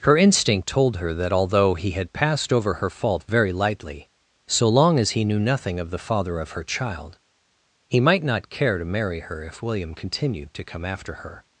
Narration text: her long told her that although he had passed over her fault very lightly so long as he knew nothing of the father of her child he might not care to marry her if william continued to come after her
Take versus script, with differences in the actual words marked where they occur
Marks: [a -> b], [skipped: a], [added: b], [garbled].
her [long -> instinct] told her that although he had passed over her fault very lightly so long as he knew nothing of the father of her child he might not care to marry her if william continued to come after her